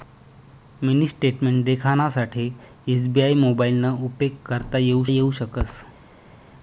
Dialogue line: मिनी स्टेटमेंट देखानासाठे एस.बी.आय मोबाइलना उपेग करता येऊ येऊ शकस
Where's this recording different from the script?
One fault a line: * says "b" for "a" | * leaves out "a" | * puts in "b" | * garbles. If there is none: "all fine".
all fine